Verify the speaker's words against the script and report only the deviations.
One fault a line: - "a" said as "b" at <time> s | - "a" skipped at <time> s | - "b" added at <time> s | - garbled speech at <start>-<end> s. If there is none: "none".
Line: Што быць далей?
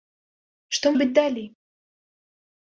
none